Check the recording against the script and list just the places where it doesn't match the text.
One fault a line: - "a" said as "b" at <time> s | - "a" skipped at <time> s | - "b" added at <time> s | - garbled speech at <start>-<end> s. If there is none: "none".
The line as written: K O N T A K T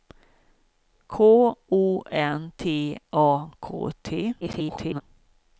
- garbled speech at 4.4-5.0 s